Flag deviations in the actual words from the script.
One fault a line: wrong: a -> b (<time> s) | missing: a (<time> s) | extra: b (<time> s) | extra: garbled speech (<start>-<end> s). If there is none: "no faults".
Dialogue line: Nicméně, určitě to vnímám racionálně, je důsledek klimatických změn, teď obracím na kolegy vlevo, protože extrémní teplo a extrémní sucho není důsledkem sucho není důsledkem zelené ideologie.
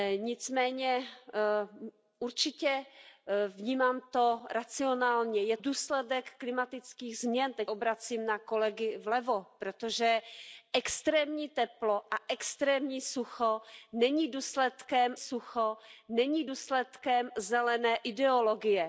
no faults